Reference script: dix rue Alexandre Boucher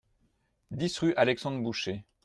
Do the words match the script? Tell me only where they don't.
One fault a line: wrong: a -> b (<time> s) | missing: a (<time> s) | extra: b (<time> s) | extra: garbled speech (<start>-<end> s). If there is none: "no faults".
no faults